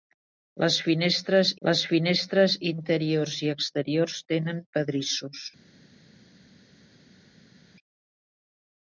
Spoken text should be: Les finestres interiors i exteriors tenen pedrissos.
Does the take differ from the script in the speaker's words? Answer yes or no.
yes